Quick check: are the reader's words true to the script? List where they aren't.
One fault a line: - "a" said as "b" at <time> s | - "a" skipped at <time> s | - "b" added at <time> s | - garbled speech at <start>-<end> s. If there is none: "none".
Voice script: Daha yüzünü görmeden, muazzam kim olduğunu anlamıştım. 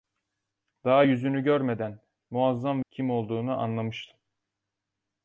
none